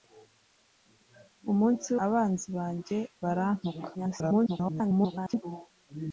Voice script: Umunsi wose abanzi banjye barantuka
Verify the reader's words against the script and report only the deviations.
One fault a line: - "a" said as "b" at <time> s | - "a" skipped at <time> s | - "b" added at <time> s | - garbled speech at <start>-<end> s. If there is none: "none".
- "wose" skipped at 1.9 s
- garbled speech at 3.9-5.4 s